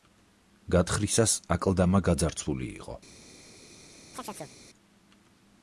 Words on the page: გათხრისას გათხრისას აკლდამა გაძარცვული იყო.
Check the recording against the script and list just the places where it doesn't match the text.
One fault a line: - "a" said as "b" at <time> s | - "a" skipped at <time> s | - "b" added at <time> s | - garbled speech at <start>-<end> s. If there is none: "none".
- "გათხრისას" skipped at 1.4 s